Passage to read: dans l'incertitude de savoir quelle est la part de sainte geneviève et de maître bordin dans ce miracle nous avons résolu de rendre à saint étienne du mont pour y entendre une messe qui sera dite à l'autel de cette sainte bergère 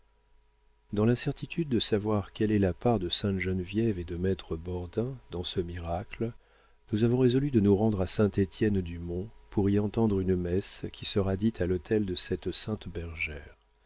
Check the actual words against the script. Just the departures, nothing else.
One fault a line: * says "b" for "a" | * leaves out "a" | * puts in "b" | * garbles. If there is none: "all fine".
* puts in "nous"